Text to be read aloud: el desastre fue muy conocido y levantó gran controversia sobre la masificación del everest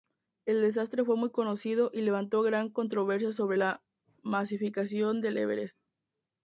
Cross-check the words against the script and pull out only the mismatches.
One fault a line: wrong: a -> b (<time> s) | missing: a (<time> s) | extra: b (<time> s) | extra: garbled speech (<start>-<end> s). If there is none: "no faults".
no faults